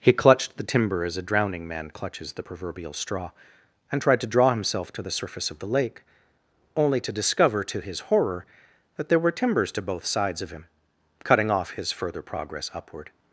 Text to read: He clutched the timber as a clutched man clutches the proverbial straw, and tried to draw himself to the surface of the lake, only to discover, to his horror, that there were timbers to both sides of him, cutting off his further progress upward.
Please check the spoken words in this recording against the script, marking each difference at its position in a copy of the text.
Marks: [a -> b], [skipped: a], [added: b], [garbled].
He clutched the timber as a [clutched -> drowning] man clutches the proverbial straw, and tried to draw himself to the surface of the lake, only to discover, to his horror, that there were timbers to both sides of him, cutting off his further progress upward.